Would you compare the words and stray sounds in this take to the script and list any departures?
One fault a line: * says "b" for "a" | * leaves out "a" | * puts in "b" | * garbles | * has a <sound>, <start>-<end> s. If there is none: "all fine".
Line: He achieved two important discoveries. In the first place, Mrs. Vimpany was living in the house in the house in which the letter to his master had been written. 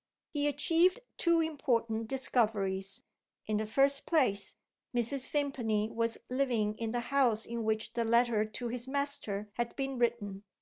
* leaves out "the house in"